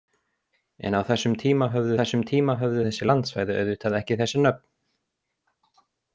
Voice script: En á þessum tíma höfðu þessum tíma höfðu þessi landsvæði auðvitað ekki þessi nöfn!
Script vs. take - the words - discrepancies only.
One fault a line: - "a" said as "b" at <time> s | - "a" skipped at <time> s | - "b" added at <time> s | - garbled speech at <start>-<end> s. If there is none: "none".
none